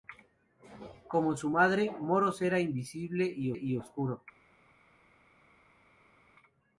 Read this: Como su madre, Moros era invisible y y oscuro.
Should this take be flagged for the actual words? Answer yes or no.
no